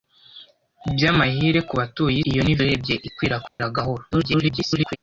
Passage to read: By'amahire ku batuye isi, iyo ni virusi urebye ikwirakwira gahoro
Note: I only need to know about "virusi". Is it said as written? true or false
false